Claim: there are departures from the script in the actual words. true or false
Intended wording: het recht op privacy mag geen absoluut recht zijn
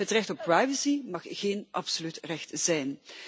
false